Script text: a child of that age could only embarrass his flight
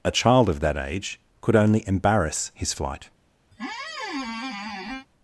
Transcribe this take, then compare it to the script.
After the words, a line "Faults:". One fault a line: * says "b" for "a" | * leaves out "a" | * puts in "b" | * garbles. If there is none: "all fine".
a child of that age could only embarrass his flight
Faults:
all fine